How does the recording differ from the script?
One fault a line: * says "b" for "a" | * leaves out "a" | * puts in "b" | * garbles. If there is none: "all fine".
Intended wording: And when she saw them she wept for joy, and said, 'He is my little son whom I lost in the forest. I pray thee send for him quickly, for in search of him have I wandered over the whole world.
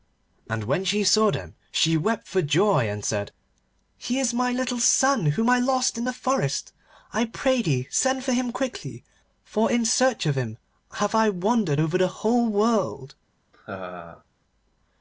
all fine